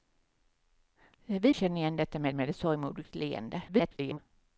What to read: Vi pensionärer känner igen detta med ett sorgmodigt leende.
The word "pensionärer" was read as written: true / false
false